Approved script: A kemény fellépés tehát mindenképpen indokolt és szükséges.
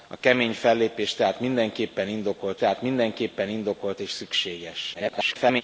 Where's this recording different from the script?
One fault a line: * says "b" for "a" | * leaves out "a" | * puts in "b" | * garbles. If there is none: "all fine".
* puts in "tehát mindenképpen indokolt"
* garbles